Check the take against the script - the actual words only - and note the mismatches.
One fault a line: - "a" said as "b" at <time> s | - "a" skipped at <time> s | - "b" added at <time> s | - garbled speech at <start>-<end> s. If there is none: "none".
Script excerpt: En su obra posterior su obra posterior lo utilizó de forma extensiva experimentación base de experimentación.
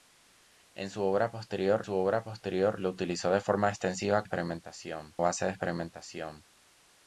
none